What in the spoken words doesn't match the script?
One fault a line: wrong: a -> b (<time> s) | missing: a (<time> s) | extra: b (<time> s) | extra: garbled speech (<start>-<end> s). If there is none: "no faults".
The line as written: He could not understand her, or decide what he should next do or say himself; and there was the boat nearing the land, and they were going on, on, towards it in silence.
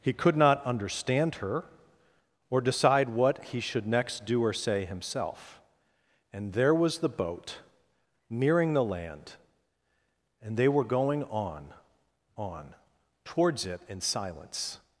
no faults